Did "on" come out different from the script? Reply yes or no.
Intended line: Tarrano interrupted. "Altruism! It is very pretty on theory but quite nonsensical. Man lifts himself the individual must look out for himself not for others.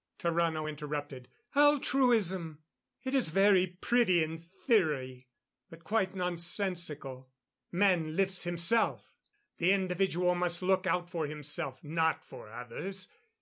yes